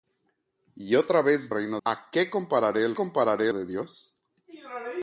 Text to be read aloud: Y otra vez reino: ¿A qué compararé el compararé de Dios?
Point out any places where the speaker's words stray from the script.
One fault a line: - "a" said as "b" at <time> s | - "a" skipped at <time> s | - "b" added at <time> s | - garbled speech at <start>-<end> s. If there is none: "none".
none